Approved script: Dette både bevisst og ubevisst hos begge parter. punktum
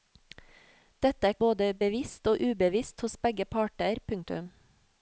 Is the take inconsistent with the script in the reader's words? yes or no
no